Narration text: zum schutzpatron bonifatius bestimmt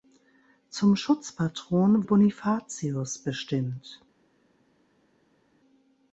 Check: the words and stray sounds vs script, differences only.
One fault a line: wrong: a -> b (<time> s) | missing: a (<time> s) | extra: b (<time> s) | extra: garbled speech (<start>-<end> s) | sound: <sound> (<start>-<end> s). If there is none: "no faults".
no faults